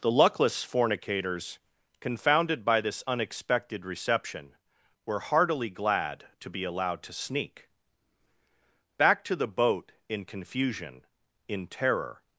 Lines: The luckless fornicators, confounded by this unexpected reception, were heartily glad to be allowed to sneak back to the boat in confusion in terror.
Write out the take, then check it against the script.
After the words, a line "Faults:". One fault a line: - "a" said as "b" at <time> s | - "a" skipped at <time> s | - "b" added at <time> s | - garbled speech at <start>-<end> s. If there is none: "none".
The luckless fornicators, confounded by this unexpected reception, were heartily glad to be allowed to sneak back to the boat in confusion in terror.
Faults:
none